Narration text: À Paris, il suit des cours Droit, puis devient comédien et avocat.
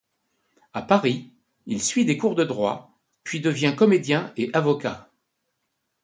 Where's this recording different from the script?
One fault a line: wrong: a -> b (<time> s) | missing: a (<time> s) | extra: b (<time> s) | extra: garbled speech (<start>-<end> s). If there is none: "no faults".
extra: de (2.3 s)